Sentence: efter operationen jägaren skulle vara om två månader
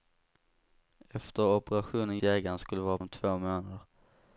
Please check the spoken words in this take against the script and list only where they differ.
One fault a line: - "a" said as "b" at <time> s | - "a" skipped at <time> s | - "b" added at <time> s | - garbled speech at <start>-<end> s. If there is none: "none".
none